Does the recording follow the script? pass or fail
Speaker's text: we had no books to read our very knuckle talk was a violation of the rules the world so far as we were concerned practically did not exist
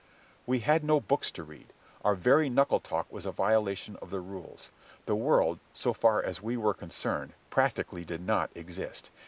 pass